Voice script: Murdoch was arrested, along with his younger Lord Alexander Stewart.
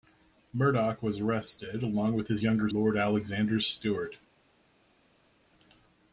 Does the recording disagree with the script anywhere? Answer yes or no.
no